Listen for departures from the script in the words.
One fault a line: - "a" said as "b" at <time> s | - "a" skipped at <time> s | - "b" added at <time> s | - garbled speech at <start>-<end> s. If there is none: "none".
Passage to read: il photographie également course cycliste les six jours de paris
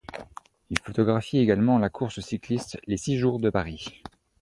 - "la" added at 1.8 s